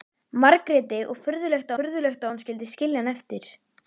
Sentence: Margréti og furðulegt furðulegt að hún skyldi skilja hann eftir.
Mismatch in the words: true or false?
false